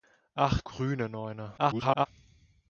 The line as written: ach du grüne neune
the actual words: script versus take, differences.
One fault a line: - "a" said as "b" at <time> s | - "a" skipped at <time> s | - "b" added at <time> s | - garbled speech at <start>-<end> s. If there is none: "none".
- "du" skipped at 0.6 s
- garbled speech at 1.6-2.1 s